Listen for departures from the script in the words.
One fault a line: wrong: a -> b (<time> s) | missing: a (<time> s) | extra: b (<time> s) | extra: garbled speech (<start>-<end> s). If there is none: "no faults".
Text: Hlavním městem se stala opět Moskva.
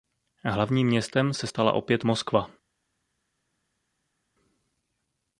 no faults